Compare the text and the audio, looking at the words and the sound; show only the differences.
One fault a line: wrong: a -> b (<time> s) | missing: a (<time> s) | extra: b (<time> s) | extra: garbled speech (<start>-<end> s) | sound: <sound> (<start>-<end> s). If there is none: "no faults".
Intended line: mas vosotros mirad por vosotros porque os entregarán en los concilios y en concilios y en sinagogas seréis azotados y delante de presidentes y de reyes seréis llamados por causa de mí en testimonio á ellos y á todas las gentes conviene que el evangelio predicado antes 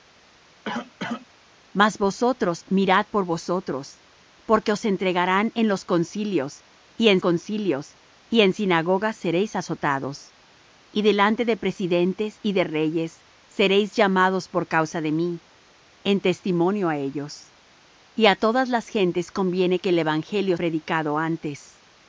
sound: cough (0.6-1.3 s)